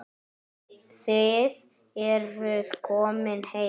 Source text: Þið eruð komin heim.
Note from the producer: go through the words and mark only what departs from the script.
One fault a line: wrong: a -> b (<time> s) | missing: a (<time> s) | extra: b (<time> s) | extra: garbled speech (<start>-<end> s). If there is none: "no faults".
no faults